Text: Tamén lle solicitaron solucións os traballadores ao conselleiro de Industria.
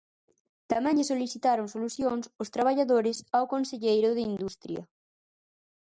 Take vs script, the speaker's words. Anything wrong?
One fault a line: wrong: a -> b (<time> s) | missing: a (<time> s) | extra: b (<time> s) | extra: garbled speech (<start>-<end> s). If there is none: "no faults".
no faults